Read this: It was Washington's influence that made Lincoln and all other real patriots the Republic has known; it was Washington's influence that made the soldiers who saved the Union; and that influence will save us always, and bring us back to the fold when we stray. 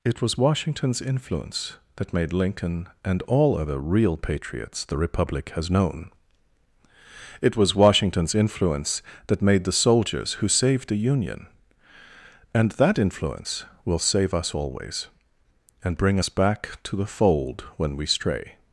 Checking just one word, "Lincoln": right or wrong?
right